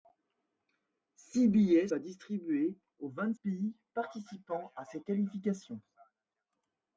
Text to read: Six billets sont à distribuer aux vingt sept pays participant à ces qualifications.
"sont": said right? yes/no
no